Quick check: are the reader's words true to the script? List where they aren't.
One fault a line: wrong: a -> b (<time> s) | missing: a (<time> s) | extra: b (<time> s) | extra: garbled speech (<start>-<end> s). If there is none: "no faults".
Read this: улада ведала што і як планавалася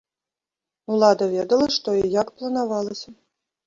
no faults